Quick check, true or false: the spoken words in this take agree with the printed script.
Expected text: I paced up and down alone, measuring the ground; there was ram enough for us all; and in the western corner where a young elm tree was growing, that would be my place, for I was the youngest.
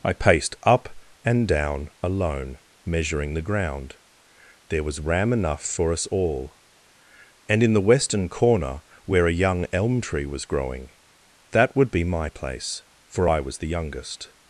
true